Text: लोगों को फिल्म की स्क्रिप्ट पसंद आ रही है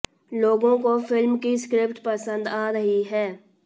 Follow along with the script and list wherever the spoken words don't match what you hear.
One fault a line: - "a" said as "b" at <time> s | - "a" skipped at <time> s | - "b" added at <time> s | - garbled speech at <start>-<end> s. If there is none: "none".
none